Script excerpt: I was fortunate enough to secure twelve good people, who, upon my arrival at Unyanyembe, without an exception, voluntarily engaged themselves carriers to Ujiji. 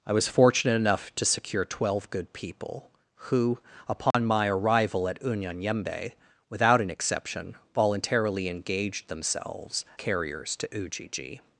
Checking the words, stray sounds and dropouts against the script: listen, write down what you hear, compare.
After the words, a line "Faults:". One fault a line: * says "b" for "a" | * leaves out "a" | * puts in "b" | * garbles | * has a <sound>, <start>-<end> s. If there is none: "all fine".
I was fortunate enough to secure twelve good people, who, upon my arrival at Unyanyembe, without an exception, voluntarily engaged themselves carriers to Ujiji.
Faults:
* has a dropout, 4.1-4.1 s